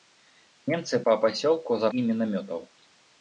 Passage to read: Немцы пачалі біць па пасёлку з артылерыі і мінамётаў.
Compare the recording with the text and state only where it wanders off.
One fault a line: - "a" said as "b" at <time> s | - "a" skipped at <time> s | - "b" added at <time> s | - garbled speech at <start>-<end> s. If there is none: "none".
- "пачалі біць" skipped at 1.0 s
- "артылерыі" skipped at 1.9 s